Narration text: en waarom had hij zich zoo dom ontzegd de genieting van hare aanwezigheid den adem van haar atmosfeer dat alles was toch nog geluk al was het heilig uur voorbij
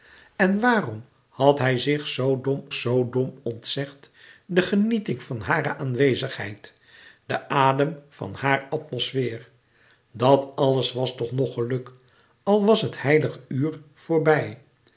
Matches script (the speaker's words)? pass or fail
fail